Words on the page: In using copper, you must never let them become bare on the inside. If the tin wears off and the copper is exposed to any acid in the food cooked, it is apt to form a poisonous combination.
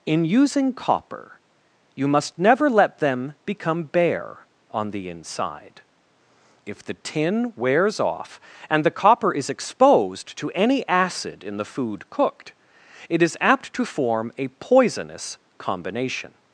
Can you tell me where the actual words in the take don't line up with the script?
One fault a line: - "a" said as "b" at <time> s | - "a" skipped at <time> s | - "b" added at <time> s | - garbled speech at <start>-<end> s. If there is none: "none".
none